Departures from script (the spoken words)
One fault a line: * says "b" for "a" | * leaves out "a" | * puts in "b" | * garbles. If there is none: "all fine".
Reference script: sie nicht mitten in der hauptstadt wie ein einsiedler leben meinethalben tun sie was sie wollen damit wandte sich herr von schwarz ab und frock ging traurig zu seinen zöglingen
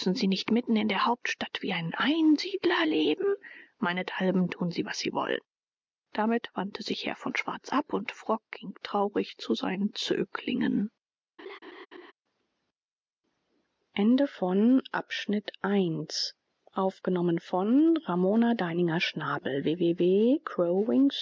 all fine